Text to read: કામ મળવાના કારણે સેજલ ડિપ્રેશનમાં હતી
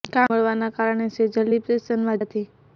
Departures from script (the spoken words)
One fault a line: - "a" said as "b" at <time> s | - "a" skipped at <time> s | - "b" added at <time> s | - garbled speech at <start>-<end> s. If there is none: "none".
none